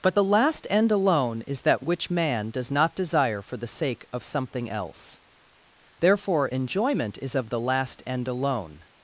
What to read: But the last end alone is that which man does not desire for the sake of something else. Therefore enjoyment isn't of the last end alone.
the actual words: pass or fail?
fail